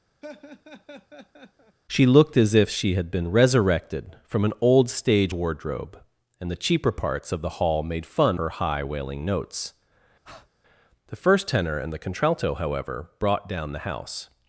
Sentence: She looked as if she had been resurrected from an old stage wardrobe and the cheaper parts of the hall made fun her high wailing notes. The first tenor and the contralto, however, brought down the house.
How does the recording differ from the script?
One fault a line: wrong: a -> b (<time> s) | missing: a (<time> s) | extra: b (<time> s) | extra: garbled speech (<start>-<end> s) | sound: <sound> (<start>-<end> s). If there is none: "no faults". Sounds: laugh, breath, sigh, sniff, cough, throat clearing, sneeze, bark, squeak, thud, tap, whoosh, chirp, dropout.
sound: laugh (0.2-1.8 s)
sound: breath (10.2-10.5 s)